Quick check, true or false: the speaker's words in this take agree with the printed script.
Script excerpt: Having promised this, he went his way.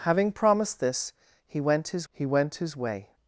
false